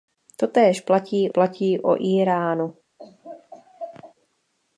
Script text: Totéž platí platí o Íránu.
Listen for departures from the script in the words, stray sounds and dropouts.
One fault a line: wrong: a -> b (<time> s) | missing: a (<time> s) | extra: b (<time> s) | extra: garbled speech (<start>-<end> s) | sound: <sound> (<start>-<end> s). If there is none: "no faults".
sound: laugh (3.0-4.1 s)